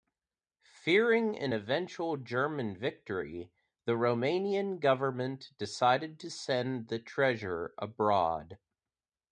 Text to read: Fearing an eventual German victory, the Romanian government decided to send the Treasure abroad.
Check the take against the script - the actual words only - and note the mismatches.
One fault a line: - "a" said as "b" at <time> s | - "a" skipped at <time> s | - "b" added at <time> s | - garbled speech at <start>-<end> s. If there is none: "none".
none